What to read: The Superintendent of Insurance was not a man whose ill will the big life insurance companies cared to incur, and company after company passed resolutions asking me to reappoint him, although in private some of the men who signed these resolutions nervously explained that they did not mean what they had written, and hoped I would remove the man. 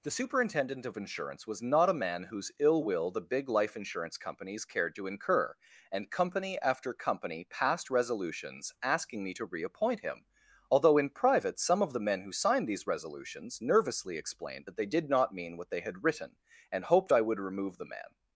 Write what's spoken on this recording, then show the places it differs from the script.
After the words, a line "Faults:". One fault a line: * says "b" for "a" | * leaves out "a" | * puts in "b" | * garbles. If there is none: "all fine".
The Superintendent of Insurance was not a man whose ill will the big life insurance companies cared to incur, and company after company passed resolutions asking me to reappoint him, although in private some of the men who signed these resolutions nervously explained that they did not mean what they had written, and hoped I would remove the man.
Faults:
all fine